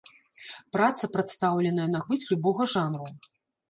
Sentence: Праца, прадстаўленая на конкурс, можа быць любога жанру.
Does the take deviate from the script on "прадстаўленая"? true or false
false